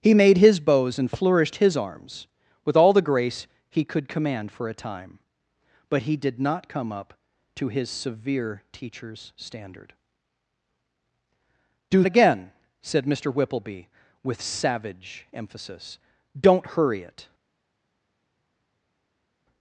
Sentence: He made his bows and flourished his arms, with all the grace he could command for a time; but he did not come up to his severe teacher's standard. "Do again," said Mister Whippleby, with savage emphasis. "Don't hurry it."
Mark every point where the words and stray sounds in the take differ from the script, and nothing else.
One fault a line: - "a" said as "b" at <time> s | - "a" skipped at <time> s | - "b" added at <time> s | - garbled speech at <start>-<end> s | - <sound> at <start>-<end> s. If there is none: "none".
none